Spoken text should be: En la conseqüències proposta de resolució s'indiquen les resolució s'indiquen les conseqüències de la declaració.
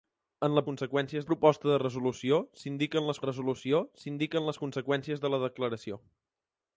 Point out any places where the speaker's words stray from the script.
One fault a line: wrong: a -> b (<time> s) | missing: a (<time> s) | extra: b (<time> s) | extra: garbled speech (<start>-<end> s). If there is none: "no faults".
no faults